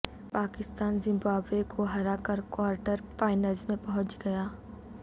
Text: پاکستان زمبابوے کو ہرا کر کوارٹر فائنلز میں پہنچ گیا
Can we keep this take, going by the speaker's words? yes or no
yes